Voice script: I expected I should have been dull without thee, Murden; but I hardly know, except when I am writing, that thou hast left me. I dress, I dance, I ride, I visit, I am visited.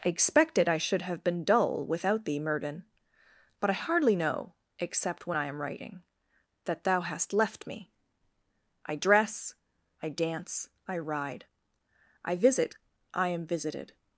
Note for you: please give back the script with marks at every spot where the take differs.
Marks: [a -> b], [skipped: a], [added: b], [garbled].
I expected I should have been dull without thee, Murden; but I hardly know, except when I am writing, that thou hast left me. I dress, I dance, I ride, I visit, I am visited.